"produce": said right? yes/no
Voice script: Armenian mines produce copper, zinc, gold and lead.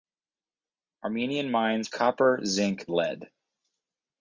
no